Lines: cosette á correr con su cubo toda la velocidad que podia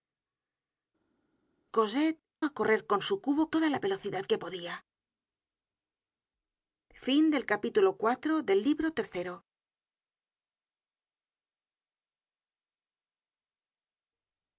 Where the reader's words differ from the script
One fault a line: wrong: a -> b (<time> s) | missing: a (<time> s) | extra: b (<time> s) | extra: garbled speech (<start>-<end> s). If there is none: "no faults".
no faults